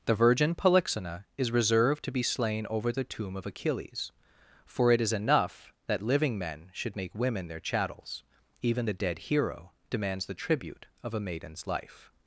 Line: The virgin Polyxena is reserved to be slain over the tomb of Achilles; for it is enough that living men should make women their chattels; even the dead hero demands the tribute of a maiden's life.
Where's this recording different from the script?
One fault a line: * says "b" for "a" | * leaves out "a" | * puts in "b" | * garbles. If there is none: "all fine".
all fine